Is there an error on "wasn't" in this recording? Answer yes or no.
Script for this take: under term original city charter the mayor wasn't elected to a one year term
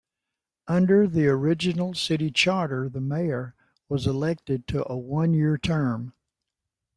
yes